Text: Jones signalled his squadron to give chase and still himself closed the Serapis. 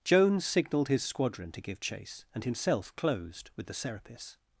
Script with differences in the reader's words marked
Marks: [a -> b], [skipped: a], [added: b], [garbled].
Jones signalled his squadron to give chase and [skipped: still] himself closed [added: with] the Serapis.